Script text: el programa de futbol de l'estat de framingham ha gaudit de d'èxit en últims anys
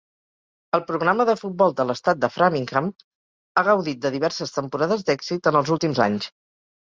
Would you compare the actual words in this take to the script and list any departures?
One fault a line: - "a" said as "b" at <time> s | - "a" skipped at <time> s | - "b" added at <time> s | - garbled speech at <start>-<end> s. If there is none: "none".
- "diverses temporades" added at 4.2 s
- "els" added at 5.6 s